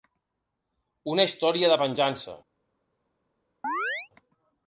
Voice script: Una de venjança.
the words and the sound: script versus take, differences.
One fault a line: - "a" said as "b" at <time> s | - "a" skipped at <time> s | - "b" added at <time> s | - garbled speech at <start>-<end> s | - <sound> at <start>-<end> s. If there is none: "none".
- "història" added at 1.3 s
- chirp at 3.6-4.1 s